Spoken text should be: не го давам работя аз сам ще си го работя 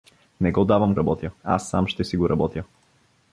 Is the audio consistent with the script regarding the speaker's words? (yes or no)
yes